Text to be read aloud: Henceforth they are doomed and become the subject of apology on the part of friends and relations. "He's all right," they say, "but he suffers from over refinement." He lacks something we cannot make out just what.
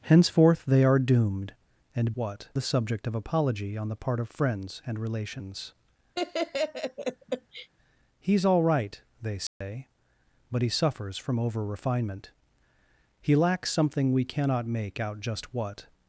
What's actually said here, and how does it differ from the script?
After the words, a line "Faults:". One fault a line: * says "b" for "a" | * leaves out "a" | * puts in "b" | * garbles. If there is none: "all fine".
Henceforth they are doomed and what the subject of apology on the part of friends and relations. "He's all right," they say, "but he suffers from over refinement." He lacks something we cannot make out just what.
Faults:
* says "what" for "become"